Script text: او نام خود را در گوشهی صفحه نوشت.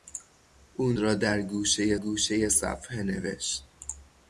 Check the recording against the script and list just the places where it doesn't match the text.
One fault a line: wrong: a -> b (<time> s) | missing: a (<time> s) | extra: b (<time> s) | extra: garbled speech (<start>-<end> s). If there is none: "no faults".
missing: نام خود (0.9 s)
extra: گوشهی (1.9 s)